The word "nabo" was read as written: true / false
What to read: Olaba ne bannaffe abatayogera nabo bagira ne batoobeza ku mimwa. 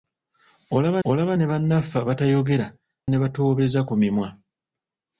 false